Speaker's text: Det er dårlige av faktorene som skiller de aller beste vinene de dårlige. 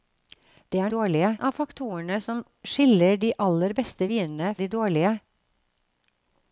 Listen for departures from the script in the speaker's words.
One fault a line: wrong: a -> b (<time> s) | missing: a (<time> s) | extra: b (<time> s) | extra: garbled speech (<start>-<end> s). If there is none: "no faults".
no faults